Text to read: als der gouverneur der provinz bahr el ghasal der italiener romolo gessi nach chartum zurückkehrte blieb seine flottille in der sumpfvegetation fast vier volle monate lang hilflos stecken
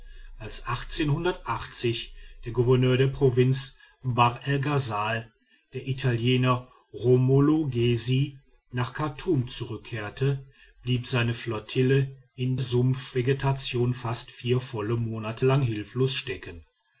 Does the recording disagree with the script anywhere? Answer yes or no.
yes